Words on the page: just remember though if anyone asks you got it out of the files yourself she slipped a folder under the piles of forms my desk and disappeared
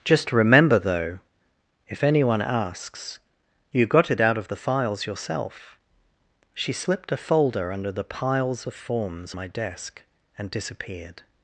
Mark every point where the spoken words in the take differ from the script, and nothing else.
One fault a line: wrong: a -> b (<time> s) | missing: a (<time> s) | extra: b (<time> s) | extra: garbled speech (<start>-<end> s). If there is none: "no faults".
no faults